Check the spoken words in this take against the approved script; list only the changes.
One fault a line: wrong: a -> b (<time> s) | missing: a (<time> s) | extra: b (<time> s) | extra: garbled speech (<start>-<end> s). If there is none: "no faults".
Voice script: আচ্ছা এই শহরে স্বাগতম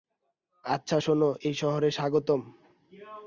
extra: শোনো (1.0 s)